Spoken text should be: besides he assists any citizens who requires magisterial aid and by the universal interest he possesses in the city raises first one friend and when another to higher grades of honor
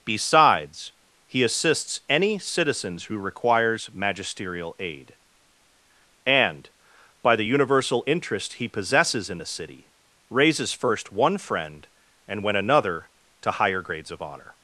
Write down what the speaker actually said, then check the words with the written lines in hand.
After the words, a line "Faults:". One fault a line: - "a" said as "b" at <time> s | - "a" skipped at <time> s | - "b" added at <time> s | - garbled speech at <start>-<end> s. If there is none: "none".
besides he assists any citizens who requires magisterial aid and by the universal interest he possesses in the city raises first one friend and when another to higher grades of honor
Faults:
none